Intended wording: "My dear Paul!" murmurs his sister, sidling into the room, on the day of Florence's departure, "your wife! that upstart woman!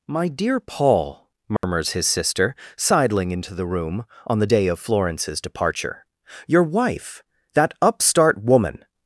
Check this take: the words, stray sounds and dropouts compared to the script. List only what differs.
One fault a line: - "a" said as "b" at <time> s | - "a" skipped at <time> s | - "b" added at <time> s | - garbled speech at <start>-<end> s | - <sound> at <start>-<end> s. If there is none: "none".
- dropout at 1.6-1.6 s